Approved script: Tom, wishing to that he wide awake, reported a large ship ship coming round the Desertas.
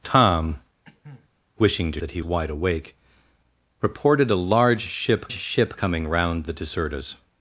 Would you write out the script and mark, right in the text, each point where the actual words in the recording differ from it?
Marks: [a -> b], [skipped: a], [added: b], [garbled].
Tom, wishing to that he wide awake, reported a large ship ship coming round the Desertas.